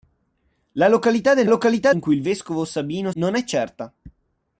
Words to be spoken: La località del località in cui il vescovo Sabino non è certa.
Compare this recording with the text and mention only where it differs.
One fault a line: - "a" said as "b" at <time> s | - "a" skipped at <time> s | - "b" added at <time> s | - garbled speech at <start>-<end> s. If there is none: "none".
none